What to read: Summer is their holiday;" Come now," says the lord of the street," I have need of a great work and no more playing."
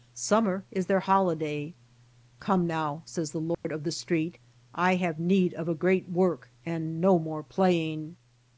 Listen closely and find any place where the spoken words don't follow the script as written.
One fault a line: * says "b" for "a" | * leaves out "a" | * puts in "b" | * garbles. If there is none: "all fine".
all fine